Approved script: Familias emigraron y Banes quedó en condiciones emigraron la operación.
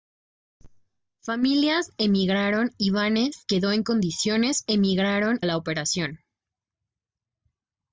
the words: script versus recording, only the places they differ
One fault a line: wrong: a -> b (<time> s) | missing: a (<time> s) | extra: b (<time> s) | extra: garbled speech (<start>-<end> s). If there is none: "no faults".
no faults